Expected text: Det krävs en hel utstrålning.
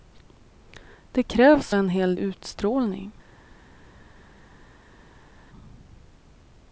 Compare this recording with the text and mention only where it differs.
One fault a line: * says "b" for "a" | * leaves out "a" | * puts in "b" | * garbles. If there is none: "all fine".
all fine